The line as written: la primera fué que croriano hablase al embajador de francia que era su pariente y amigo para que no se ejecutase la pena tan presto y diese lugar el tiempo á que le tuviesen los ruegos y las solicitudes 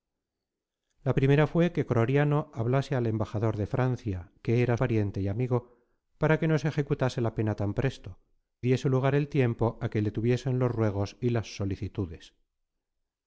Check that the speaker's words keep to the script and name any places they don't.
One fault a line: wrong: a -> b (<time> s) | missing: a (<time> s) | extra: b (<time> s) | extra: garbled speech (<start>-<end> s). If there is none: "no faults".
missing: su (4.8 s)
missing: y (8.2 s)